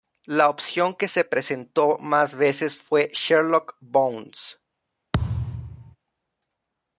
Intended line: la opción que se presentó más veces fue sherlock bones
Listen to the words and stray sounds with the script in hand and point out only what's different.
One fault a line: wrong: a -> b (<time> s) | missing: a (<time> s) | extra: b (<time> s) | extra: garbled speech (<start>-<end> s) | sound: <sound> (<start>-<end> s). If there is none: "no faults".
sound: thud (5.1-6.0 s)